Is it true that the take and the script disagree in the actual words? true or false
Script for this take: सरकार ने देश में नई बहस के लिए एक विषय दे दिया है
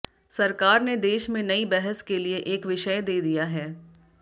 false